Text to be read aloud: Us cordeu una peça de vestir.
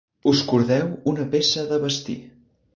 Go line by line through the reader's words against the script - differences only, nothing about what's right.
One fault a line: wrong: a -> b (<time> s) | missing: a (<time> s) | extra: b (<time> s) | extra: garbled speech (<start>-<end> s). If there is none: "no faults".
no faults